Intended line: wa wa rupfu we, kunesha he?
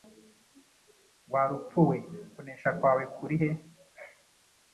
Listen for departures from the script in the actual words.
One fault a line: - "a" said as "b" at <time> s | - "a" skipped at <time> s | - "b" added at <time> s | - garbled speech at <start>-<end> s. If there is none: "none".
- "wa" skipped at 1.5 s
- "kwawe kuri" added at 2.8 s